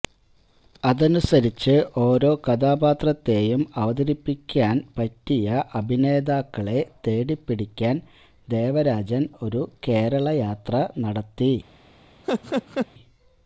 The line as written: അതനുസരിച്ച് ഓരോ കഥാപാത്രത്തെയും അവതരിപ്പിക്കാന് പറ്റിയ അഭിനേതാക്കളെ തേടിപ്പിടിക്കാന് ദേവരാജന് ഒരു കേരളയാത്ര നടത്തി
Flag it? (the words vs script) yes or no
no